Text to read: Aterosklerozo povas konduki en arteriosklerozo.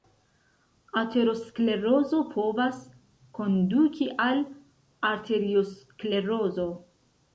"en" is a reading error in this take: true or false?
true